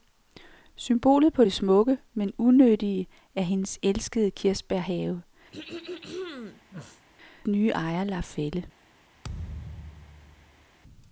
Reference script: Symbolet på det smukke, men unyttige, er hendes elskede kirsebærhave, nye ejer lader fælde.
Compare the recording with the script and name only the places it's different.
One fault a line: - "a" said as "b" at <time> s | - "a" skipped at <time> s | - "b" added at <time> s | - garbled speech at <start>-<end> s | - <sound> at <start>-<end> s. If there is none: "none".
- throat clearing at 5.5-7.1 s
- thud at 9.2-10.7 s